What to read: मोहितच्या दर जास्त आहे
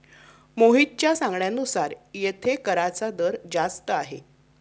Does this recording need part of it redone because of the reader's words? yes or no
yes